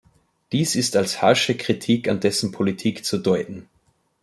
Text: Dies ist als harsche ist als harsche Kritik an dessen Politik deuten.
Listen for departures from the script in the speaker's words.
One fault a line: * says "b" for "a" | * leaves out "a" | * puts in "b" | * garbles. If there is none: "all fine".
* leaves out "ist als harsche"
* puts in "zu"